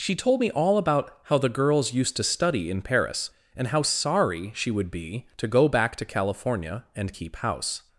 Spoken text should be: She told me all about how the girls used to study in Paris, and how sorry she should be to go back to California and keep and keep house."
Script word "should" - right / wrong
wrong